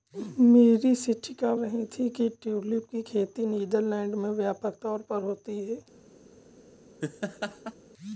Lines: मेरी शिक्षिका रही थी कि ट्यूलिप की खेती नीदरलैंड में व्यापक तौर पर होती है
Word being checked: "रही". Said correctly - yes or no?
yes